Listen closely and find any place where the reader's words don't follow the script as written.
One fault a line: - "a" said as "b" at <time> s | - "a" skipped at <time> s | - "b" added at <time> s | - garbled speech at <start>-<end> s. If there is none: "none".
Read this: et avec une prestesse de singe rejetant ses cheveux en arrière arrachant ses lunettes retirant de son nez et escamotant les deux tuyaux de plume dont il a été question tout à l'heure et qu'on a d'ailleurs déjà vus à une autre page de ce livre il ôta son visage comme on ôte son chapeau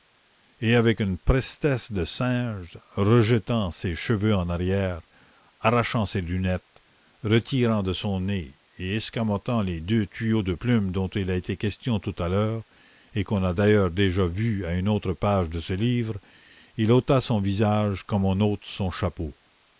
none